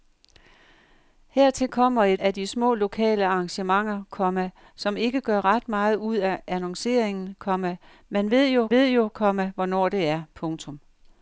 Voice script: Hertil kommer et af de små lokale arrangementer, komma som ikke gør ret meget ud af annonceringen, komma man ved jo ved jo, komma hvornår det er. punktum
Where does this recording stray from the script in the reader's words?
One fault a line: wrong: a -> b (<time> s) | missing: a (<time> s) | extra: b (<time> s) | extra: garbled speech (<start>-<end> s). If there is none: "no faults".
no faults